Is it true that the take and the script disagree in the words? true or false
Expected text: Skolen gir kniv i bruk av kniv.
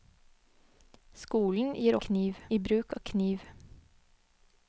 false